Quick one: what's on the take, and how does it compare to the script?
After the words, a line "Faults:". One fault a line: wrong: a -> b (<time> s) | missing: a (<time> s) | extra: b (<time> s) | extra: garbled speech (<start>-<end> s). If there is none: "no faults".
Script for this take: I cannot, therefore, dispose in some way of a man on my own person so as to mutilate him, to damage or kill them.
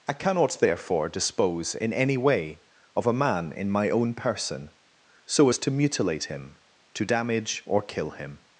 I cannot, therefore, dispose in any way of a man in my own person so as to mutilate him, to damage or kill him.
Faults:
wrong: some -> any (1.9 s)
wrong: on -> in (3.5 s)
wrong: them -> him (8.1 s)